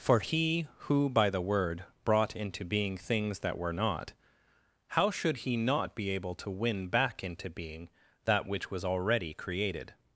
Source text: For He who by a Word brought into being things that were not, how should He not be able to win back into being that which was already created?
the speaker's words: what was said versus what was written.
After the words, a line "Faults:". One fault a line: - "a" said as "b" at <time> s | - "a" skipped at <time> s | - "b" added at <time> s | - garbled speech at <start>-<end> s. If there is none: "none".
For He who by the Word brought into being things that were not, how should He not be able to win back into being that which was already created?
Faults:
- "a" said as "the" at 1.3 s